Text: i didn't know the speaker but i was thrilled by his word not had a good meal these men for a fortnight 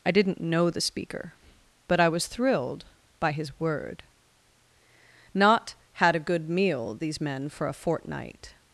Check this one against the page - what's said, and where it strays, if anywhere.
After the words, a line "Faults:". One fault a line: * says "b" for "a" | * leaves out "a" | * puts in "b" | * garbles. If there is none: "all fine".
i didn't know the speaker but i was thrilled by his word not had a good meal these men for a fortnight
Faults:
all fine